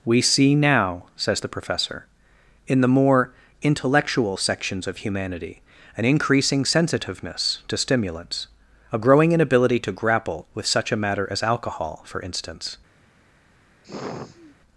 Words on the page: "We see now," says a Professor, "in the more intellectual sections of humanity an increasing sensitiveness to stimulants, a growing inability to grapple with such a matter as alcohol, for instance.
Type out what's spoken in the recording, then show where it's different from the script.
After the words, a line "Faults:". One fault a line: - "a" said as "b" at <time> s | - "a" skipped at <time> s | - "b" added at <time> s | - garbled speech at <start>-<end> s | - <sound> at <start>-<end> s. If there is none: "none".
"We see now," says the Professor, "in the more intellectual sections of humanity an increasing sensitiveness to stimulants, a growing inability to grapple with such a matter as alcohol, for instance.
Faults:
- "a" said as "the" at 1.4 s
- sigh at 13.8-14.6 s